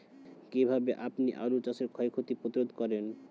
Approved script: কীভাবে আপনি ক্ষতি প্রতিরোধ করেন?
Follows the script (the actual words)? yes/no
no